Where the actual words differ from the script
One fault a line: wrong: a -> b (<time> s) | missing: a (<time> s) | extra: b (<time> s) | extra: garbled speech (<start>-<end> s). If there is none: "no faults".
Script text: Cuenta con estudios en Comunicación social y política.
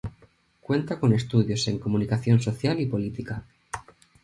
no faults